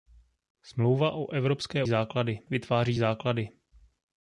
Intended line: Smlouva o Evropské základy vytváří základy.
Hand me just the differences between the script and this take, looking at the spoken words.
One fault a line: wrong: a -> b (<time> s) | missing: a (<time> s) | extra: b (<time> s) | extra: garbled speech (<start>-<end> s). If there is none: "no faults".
no faults